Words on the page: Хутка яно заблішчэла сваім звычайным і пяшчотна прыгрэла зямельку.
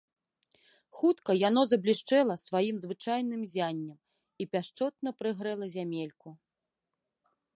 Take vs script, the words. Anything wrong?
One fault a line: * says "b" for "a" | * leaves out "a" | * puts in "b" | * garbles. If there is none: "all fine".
* puts in "ззяннем"